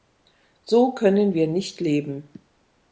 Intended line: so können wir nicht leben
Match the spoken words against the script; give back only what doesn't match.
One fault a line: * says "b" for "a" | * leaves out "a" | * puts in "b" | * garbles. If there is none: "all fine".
all fine